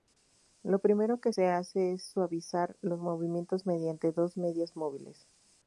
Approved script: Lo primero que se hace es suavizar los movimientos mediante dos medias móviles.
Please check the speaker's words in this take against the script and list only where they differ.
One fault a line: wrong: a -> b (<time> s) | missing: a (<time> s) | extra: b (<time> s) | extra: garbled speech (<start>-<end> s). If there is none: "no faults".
no faults